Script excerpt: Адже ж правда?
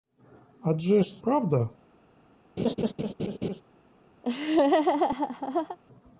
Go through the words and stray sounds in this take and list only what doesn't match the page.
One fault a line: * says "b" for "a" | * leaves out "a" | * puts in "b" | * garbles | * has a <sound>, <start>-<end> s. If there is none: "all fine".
* has a laugh, 2.6-3.6 s
* has a laugh, 4.2-5.8 s